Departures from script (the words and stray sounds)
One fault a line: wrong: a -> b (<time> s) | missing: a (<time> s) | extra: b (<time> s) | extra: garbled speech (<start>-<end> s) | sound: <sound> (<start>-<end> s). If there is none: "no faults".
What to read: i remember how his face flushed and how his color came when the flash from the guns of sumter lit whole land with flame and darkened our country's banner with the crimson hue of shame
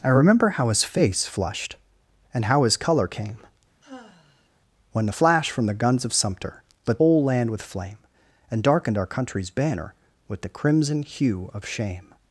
sound: sigh (3.8-4.5 s)